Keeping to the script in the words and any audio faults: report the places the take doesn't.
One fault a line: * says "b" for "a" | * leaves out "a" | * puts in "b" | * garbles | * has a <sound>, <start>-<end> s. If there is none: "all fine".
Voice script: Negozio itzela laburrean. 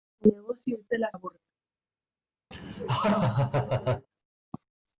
* has a laugh, 2.5-4.1 s